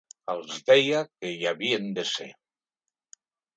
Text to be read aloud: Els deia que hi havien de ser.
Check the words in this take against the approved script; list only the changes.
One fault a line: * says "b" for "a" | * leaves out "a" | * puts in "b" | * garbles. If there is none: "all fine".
all fine